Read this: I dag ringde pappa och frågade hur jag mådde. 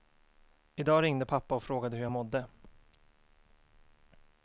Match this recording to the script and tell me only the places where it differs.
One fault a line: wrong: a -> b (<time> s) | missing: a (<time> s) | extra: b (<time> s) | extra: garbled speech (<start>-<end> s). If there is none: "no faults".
no faults